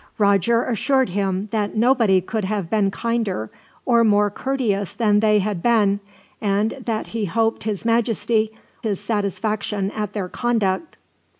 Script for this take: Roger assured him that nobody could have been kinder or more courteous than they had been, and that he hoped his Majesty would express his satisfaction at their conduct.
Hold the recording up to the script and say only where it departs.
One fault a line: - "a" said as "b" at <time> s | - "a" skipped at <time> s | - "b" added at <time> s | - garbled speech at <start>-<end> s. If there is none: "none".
- "would express" skipped at 8.5 s